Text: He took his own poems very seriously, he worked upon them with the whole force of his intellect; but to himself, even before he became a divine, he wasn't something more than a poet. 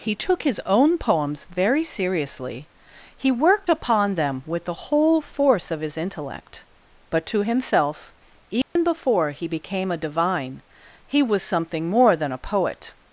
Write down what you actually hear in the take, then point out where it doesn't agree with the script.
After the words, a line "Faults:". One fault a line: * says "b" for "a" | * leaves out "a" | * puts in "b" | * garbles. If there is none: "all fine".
He took his own poems very seriously, he worked upon them with the whole force of his intellect; but to himself, even before he became a divine, he was something more than a poet.
Faults:
* says "was" for "wasn't"